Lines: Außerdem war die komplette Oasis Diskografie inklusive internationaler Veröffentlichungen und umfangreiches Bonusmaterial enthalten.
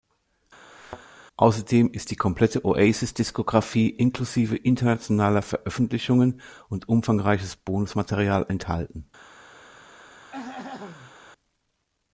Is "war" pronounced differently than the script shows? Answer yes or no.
yes